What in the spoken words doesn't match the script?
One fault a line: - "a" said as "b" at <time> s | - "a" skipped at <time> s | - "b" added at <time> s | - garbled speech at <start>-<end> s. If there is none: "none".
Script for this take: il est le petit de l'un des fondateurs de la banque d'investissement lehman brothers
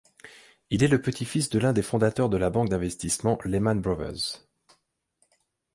- "fils" added at 1.2 s